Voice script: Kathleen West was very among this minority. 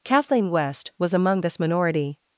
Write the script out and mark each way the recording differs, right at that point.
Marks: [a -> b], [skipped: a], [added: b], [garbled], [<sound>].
Kathleen West was [skipped: very] among this minority.